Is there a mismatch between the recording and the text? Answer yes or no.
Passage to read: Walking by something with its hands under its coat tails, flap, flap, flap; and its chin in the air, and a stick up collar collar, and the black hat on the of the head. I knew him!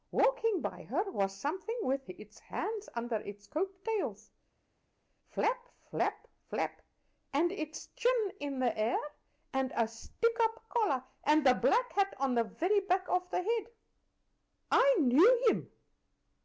yes